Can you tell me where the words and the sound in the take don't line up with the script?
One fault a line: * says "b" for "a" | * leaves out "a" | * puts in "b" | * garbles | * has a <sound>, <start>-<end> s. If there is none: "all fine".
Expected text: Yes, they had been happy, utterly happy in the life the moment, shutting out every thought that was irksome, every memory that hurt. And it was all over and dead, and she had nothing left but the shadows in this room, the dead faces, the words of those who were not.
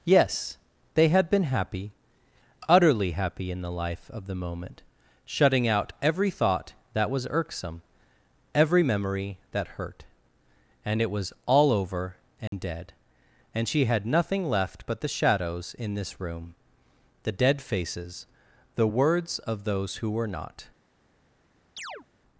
* puts in "of"
* has a dropout, 12.5-12.5 s
* has a chirp, 21.8-22.1 s